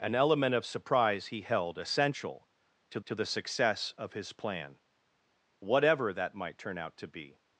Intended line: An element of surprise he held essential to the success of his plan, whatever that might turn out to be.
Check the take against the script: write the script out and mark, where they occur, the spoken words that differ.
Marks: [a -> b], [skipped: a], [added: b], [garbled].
An element of surprise he held essential to [added: to] the success of his plan, whatever that might turn out to be.